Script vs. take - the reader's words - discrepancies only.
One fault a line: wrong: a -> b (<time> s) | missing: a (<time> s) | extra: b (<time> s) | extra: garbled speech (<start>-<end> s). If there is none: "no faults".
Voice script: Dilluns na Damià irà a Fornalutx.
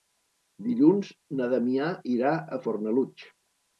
no faults